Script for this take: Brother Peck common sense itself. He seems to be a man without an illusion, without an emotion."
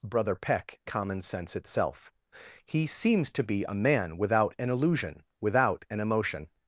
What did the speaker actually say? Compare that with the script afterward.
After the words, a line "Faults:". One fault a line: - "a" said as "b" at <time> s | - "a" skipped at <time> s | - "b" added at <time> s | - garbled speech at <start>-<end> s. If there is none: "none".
Brother Peck common sense itself. He seems to be a man without an illusion, without an emotion."
Faults:
none